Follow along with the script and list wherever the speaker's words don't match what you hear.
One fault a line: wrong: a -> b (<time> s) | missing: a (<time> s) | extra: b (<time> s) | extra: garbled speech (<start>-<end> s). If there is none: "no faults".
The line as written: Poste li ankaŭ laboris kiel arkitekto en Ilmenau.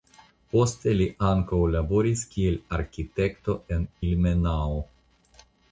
no faults